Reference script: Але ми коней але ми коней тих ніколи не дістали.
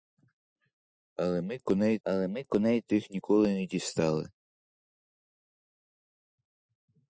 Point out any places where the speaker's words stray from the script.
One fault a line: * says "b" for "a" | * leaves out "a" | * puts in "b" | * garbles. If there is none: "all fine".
all fine